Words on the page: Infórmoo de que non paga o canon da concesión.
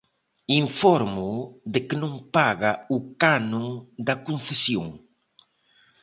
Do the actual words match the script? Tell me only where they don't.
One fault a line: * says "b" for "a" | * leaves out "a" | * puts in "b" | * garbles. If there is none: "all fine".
all fine